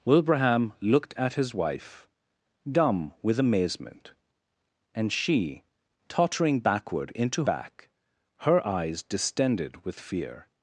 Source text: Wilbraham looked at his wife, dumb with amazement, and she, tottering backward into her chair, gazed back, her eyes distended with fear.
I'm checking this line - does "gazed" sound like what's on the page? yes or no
no